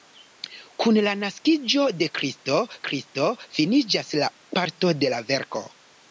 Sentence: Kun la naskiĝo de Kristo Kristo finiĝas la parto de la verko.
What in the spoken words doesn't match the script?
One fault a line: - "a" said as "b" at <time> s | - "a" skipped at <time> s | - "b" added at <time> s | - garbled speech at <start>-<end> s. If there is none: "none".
none